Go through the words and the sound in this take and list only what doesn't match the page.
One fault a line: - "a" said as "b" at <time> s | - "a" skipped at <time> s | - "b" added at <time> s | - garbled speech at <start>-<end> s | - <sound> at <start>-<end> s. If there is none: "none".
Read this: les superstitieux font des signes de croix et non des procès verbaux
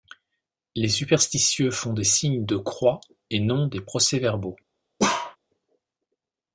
- bark at 5.0-5.4 s